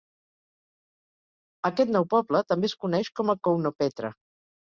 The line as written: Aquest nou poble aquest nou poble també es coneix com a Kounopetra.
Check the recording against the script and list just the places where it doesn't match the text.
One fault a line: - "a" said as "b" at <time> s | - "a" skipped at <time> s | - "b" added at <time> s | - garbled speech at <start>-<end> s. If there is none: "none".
- "aquest nou poble" skipped at 2.4 s